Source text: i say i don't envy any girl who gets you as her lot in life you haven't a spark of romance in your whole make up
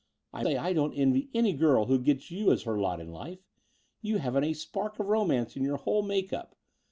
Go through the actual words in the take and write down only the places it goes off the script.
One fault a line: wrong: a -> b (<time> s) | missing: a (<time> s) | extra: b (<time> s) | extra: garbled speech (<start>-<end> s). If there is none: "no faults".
no faults